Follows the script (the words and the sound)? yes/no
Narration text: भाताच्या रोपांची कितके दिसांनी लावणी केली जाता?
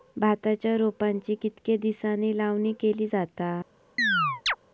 no